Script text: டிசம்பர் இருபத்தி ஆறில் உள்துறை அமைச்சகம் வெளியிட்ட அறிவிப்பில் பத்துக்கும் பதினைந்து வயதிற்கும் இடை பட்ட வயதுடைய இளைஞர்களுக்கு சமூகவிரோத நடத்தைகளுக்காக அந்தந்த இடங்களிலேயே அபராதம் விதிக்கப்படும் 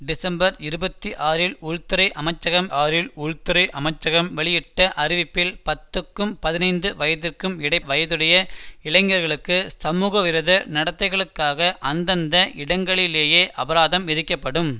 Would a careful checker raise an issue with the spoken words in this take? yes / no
yes